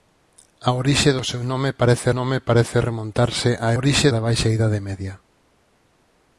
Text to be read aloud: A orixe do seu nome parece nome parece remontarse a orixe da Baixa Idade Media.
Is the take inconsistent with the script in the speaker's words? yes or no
no